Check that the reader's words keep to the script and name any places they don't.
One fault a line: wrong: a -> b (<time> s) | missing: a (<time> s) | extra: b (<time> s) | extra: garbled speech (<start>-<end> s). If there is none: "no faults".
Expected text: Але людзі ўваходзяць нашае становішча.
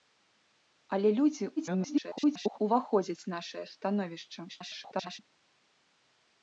extra: garbled speech (1.6-2.6 s)
extra: garbled speech (4.5-5.2 s)